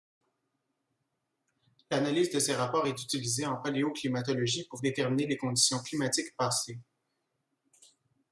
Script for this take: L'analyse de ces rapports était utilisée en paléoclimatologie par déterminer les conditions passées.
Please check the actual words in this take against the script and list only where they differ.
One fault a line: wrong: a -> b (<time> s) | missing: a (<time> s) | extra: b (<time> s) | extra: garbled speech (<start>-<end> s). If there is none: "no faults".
wrong: était -> est (2.9 s)
wrong: par -> pour (4.7 s)
extra: climatiques (5.8 s)